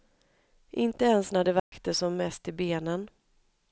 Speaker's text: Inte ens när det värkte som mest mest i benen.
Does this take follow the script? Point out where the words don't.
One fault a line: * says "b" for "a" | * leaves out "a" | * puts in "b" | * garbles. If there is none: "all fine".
* leaves out "mest"